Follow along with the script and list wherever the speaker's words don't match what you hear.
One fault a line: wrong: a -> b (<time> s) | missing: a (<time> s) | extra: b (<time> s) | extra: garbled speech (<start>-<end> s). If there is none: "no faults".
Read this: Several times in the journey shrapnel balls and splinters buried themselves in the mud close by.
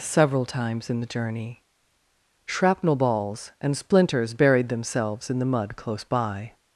no faults